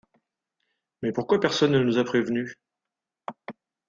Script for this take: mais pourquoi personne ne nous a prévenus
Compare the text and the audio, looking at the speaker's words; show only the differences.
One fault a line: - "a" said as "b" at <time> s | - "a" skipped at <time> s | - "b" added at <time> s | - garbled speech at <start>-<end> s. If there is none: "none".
none